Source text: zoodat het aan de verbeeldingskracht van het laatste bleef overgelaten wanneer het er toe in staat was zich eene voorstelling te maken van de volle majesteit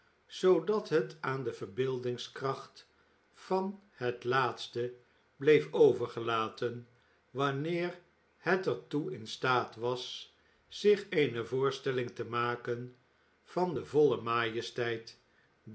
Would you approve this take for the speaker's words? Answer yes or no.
yes